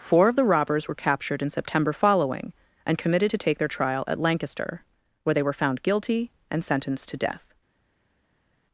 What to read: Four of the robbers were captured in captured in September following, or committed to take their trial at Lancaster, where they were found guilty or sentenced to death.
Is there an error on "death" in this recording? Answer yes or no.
no